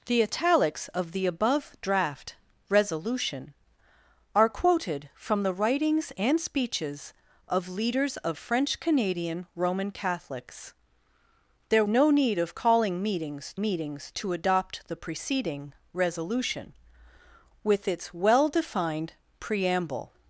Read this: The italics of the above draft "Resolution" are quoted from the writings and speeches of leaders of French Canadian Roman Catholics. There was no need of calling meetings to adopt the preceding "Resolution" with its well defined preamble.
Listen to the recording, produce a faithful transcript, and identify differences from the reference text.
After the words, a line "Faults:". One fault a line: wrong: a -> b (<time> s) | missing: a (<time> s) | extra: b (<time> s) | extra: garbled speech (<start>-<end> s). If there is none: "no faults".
The italics of the above draft "Resolution" are quoted from the writings and speeches of leaders of French Canadian Roman Catholics. There no need of calling meetings meetings to adopt the preceding "Resolution" with its well defined preamble.
Faults:
missing: was (11.8 s)
extra: meetings (13.6 s)